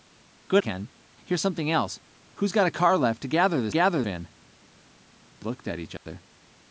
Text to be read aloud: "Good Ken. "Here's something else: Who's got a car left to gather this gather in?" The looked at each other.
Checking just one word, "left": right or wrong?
right